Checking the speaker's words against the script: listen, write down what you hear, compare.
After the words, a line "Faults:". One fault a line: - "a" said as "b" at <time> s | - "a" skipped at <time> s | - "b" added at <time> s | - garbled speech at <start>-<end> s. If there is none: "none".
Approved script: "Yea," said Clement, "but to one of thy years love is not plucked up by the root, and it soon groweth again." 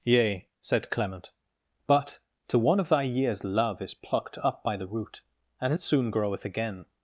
"Yea," said Clement, "but to one of thy years love is plucked up by the root, and it soon groweth again."
Faults:
- "not" skipped at 3.9 s